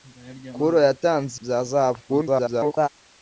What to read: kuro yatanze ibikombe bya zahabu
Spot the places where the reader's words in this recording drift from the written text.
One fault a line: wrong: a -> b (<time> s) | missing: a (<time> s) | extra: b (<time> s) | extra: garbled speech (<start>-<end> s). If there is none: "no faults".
missing: ibikombe (1.4 s)
extra: garbled speech (2.1-2.9 s)